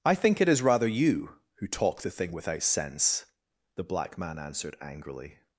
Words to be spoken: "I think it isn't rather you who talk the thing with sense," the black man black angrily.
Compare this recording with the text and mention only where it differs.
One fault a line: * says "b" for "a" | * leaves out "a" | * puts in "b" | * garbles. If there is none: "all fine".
* says "is" for "isn't"
* says "without" for "with"
* says "answered" for "black"